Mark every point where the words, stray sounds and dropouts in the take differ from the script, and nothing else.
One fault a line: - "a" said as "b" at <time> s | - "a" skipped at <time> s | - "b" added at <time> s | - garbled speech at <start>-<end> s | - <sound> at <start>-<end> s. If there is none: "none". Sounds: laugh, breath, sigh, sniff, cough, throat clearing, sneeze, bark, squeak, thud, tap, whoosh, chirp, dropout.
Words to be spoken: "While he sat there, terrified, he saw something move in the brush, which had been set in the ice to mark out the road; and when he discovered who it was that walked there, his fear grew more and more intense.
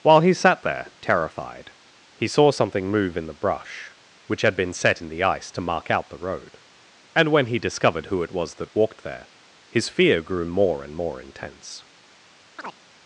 - chirp at 12.6-12.8 s